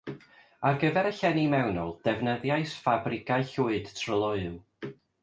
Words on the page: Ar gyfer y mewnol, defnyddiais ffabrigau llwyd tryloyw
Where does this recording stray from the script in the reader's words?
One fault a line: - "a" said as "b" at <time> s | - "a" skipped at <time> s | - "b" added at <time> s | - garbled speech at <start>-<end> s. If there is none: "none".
- "llenni" added at 1.2 s